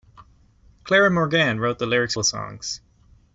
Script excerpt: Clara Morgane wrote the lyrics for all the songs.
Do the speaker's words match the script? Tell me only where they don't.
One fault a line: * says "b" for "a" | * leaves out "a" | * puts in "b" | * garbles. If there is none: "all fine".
* leaves out "for all"